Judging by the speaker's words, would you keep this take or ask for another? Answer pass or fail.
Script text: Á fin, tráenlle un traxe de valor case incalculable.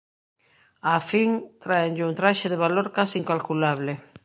pass